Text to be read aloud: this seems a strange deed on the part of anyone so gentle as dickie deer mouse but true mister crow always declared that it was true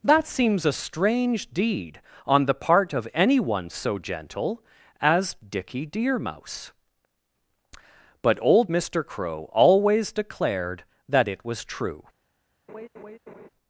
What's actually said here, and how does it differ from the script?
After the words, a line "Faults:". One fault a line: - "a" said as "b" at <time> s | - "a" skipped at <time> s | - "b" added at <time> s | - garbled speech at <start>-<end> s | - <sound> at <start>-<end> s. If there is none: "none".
that seems a strange deed on the part of anyone so gentle as dickie deer mouse but old mister crow always declared that it was true
Faults:
- "this" said as "that" at 0.0 s
- "true" said as "old" at 8.4 s
- laugh at 12.7-13.5 s